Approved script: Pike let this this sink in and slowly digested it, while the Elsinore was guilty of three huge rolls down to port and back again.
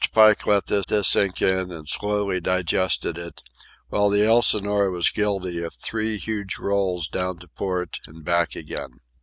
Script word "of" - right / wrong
right